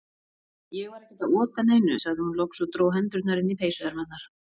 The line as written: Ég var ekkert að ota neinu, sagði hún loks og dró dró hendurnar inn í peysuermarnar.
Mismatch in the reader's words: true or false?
true